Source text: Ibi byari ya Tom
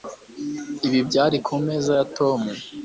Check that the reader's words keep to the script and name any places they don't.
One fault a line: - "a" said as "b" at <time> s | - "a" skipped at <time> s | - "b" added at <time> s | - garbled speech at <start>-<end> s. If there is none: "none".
- "kumeza" added at 1.5 s